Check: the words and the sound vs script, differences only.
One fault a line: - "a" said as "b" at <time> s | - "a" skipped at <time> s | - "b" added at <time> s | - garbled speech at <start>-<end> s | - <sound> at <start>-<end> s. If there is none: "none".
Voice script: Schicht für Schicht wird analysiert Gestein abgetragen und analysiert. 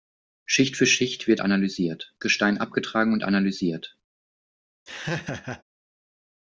- laugh at 4.9-5.6 s